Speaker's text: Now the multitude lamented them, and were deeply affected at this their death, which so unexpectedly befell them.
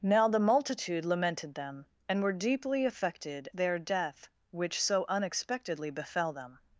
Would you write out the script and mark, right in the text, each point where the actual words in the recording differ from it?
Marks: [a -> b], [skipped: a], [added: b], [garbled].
Now the multitude lamented them, and were deeply affected [skipped: at this] their death, which so unexpectedly befell them.